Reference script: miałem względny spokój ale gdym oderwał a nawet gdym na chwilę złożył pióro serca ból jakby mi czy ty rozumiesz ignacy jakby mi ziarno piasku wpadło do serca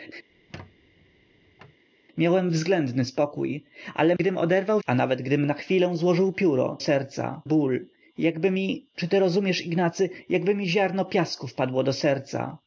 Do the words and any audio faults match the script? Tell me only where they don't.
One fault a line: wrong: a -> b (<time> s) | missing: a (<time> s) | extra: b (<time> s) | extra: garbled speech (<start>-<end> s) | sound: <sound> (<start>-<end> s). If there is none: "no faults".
sound: squeak (0.3-1.8 s)